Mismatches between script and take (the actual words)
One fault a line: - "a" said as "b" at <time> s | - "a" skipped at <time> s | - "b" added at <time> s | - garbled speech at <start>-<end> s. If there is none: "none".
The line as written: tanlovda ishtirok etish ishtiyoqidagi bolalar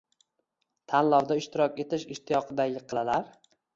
none